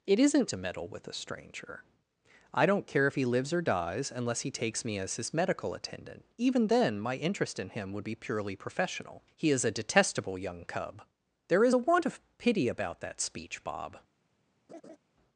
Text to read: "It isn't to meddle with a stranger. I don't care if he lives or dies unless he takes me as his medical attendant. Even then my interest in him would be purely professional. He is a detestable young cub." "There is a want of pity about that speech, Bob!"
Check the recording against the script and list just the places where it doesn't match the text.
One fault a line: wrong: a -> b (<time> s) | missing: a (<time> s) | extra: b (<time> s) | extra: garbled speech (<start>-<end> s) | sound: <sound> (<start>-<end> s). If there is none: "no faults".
sound: laugh (14.7-15.0 s)